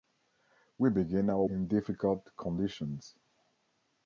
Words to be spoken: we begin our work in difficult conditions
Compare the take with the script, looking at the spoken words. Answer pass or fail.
fail